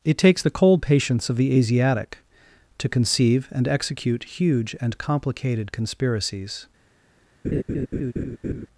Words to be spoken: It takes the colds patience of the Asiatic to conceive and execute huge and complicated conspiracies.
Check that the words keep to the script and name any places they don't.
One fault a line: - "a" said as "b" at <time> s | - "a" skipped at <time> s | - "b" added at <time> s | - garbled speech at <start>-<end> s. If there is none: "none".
- "colds" said as "cold" at 0.5 s